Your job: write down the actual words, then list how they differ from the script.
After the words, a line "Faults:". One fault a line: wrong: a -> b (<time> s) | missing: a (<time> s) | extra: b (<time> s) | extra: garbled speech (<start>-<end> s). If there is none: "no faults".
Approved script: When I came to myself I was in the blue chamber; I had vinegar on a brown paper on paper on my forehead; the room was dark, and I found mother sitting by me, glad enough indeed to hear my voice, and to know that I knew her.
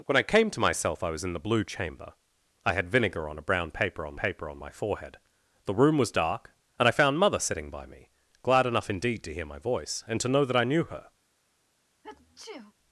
When I came to myself I was in the blue chamber; I had vinegar on a brown paper on paper on my forehead; the room was dark, and I found mother sitting by me, glad enough indeed to hear my voice, and to know that I knew her.
Faults:
no faults